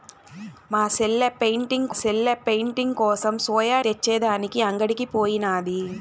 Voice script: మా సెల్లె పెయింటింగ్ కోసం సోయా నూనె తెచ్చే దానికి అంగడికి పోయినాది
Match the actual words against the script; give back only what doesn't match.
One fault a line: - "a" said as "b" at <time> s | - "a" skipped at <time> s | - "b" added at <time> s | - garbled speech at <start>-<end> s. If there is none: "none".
- "సెల్లె పెయింటింగ్" added at 1.9 s
- "నూనె" skipped at 3.8 s